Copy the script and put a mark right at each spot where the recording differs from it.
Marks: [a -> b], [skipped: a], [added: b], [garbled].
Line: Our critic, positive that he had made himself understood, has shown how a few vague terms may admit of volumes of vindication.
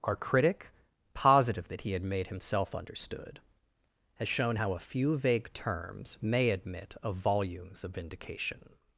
Our critic, positive that he had made himself understood, has shown how a few vague terms may admit of volumes of vindication.